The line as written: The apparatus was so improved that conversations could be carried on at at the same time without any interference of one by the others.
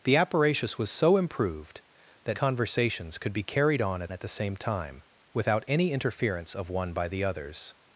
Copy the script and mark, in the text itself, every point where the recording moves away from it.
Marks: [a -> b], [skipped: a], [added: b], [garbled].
The apparatus was so improved that conversations could be carried on at at the same time without any interference of one by the others.